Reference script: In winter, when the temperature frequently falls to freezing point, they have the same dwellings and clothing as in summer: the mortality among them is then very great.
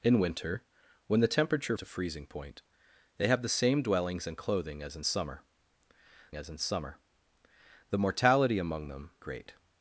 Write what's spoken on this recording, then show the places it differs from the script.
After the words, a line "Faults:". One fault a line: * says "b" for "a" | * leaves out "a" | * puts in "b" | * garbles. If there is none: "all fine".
In winter, when the temperature to freezing point, they have the same dwellings and clothing as in summer as in summer: the mortality among them great.
Faults:
* leaves out "frequently falls"
* puts in "as in summer"
* leaves out "is then very"